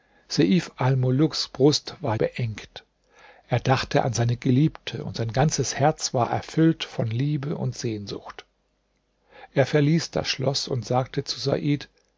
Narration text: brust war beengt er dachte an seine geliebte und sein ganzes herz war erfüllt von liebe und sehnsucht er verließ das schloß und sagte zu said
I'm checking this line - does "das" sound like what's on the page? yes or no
yes